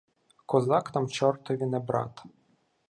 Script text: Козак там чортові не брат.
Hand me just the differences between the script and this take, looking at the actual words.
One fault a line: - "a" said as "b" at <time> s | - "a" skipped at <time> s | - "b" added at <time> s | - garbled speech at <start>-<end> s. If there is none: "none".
none